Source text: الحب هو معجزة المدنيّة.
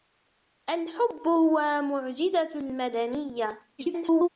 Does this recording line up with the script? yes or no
no